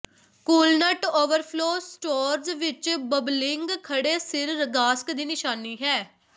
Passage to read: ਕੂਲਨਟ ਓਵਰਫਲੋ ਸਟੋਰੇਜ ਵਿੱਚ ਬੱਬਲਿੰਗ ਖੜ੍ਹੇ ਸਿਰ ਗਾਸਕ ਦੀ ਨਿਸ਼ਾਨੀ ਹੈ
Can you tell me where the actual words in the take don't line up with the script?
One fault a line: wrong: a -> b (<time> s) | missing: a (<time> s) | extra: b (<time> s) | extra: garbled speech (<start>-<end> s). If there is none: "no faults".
no faults